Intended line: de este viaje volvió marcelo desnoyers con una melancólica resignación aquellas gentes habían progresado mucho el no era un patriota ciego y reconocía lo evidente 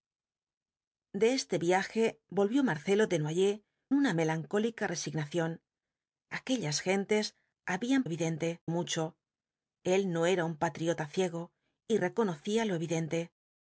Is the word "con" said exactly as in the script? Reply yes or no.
no